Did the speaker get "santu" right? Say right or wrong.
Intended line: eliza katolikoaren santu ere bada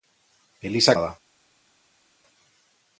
wrong